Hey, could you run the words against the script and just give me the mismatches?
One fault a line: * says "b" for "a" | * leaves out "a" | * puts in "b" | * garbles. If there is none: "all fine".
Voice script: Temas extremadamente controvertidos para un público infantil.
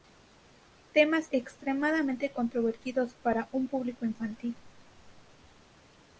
all fine